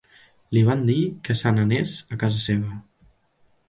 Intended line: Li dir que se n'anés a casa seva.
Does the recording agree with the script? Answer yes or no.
no